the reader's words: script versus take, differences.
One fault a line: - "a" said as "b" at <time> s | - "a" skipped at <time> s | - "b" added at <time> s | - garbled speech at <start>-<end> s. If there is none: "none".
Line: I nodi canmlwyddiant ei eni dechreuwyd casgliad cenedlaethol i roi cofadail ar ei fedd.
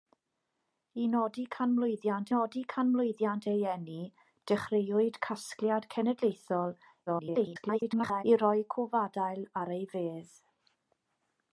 - "nodi canmlwyddiant" added at 2.3 s
- garbled speech at 7.1-8.2 s